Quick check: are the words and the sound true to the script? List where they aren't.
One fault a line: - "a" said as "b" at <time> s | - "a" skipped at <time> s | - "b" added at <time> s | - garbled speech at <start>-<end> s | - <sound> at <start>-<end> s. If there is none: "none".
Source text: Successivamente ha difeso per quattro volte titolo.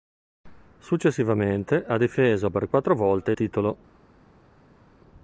none